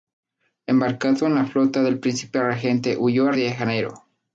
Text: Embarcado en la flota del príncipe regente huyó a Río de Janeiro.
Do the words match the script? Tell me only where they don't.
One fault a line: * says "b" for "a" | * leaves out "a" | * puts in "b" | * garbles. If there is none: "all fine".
* leaves out "Río"